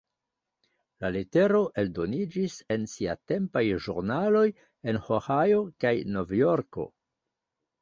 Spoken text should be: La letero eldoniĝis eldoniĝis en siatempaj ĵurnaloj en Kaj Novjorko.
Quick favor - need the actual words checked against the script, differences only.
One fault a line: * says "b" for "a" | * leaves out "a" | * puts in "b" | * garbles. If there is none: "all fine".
* leaves out "eldoniĝis"
* puts in "Ohio"